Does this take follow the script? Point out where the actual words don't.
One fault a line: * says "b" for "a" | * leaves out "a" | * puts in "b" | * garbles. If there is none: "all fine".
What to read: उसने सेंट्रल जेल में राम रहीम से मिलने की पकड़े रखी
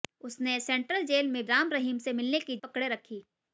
all fine